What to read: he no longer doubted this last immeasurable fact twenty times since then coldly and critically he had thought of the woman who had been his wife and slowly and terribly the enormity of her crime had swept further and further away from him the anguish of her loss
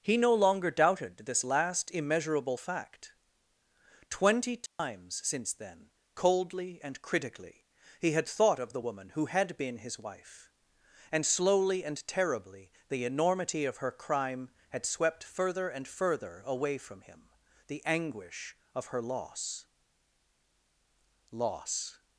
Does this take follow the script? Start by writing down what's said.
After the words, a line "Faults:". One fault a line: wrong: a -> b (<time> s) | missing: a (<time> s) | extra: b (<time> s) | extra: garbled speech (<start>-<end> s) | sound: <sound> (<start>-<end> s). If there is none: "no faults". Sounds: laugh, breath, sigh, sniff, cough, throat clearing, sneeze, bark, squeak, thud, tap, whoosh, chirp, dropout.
he no longer doubted this last immeasurable fact twenty times since then coldly and critically he had thought of the woman who had been his wife and slowly and terribly the enormity of her crime had swept further and further away from him the anguish of her loss loss
Faults:
sound: dropout (4.7-4.8 s)
extra: loss (21.3 s)